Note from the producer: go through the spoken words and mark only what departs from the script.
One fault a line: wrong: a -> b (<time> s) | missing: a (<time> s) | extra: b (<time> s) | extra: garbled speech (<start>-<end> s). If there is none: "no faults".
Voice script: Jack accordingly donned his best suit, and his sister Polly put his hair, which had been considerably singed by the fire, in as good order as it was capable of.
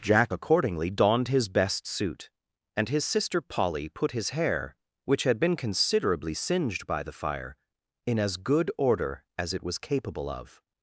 no faults